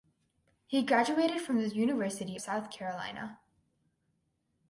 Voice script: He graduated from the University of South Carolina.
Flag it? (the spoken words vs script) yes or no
yes